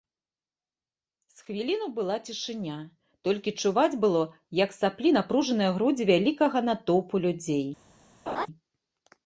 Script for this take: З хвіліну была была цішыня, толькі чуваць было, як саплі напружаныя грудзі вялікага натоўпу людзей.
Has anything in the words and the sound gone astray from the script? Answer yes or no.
yes